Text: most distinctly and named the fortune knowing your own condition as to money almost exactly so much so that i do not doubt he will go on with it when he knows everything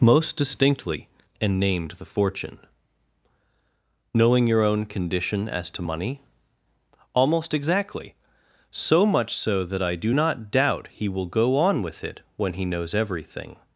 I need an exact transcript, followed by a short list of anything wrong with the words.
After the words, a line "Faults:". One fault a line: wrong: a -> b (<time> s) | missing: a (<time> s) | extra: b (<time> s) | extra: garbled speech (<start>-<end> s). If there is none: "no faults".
most distinctly and named the fortune knowing your own condition as to money almost exactly so much so that i do not doubt he will go on with it when he knows everything
Faults:
no faults